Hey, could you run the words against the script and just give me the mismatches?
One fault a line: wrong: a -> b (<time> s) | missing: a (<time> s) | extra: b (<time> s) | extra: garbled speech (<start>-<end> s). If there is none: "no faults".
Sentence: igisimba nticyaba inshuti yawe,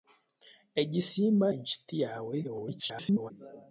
missing: nticyaba (1.5 s)
extra: garbled speech (2.4-3.3 s)